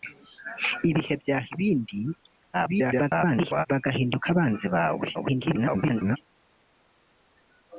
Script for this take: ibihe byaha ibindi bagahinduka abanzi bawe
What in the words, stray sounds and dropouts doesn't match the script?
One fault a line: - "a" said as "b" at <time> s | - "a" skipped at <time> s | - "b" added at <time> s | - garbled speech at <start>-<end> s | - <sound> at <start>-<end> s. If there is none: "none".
- garbled speech at 2.5-3.7 s
- garbled speech at 5.1-6.2 s